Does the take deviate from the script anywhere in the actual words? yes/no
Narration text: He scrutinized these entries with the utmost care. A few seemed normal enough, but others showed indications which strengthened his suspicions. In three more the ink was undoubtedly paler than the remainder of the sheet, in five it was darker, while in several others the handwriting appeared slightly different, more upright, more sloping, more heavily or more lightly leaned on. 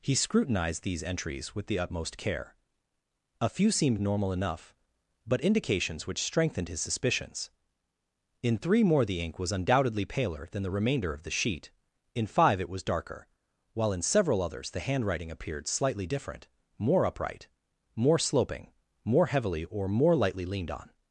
yes